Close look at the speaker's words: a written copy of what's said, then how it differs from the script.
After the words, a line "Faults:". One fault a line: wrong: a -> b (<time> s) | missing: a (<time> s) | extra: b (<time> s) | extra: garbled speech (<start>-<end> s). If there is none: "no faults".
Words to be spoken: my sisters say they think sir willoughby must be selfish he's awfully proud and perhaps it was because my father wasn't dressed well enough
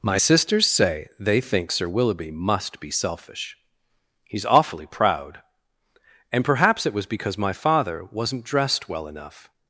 my sisters say they think sir willoughby must be selfish he's awfully proud and perhaps it was because my father wasn't dressed well enough
Faults:
no faults